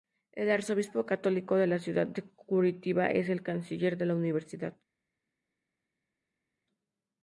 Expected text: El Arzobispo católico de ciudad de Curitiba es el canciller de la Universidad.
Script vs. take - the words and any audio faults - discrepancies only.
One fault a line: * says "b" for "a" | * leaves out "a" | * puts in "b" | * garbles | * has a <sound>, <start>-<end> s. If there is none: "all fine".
* puts in "la"